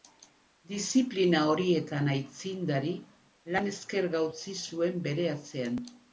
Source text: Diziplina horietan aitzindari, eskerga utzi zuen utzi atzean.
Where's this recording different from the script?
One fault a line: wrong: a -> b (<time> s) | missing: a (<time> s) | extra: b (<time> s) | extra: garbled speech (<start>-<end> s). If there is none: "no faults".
extra: lan (3.6 s)
wrong: utzi -> bere (5.1 s)